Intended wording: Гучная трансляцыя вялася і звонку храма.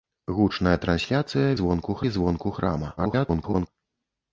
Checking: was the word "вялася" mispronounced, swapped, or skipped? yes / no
yes